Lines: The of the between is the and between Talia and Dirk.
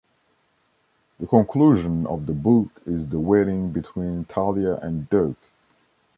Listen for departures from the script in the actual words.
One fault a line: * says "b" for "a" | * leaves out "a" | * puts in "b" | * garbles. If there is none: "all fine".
* puts in "conclusion"
* says "book" for "between"
* says "wedding" for "and"